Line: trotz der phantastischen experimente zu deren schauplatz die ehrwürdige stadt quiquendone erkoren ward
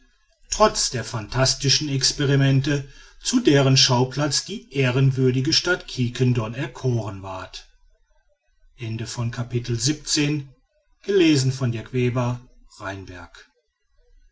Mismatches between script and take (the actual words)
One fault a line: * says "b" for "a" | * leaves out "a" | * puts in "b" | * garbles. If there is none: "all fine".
all fine